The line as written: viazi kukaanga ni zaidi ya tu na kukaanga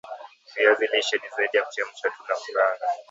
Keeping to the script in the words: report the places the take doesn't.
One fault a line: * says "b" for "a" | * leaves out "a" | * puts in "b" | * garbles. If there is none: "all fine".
* says "lishe" for "kukaanga"
* puts in "kuchemsha"